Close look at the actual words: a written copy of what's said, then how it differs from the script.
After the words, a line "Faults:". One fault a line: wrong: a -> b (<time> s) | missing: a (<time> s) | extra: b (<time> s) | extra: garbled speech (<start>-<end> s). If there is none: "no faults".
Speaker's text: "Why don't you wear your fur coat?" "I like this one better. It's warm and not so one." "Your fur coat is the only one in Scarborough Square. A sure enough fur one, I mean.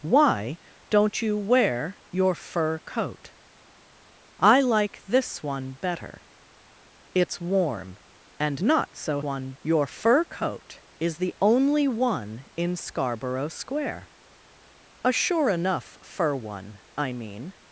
"Why don't you wear your fur coat?" "I like this one better. It's warm and not so one." "Your fur coat is the only one in Scarborough Square. A sure enough fur one, I mean.
Faults:
no faults